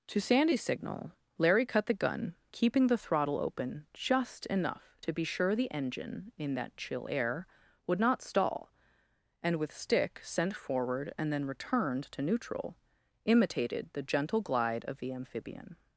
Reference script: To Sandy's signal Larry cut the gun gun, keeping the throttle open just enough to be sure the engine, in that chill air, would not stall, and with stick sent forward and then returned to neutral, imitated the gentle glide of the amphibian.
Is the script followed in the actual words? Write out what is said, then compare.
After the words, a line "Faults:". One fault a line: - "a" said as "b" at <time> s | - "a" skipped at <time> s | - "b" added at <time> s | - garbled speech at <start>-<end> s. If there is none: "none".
To Sandy's signal Larry cut the gun, keeping the throttle open just enough to be sure the engine, in that chill air, would not stall, and with stick sent forward and then returned to neutral, imitated the gentle glide of the amphibian.
Faults:
- "gun" skipped at 2.4 s